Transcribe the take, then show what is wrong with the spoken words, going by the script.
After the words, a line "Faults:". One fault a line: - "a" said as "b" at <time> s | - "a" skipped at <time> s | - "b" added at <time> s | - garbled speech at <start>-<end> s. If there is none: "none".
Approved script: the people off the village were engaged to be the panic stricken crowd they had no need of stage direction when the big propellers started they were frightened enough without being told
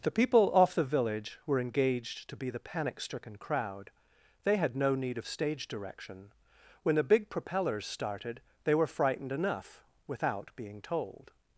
the people off the village were engaged to be the panic stricken crowd they had no need of stage direction when the big propellers started they were frightened enough without being told
Faults:
none